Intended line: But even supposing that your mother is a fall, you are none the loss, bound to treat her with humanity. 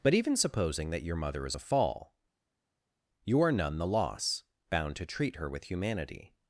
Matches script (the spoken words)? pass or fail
pass